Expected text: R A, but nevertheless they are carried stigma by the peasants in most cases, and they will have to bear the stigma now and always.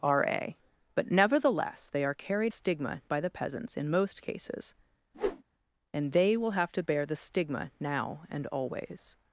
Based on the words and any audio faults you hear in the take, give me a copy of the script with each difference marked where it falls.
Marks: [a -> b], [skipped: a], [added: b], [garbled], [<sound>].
R A, but nevertheless they are carried stigma by the peasants in most cases, [whoosh] and they will have to bear the stigma now and always.